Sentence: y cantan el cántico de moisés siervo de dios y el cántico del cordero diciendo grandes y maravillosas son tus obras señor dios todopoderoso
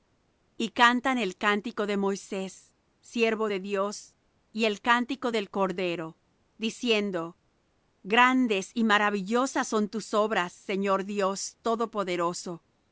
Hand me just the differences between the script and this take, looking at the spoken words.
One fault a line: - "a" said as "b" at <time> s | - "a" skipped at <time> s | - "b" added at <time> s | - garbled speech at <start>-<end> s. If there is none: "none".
none